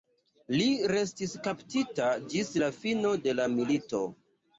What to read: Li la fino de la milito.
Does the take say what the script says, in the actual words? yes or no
no